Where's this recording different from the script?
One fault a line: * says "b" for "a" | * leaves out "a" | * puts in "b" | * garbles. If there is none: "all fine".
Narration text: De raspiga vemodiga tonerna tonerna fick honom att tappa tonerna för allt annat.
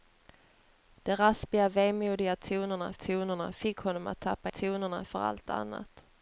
all fine